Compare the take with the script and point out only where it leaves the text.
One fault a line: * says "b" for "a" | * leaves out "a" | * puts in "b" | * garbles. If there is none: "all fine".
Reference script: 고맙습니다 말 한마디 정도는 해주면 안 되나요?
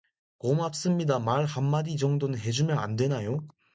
all fine